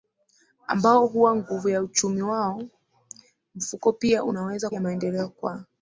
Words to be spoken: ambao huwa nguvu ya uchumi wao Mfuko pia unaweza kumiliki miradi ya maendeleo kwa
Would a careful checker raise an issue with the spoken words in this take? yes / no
yes